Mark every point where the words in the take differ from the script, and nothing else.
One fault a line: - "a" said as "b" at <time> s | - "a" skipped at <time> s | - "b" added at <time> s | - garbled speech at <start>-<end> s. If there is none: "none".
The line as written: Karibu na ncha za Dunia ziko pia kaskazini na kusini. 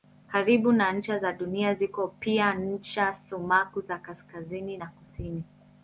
- "ncha sumaku za" added at 2.5 s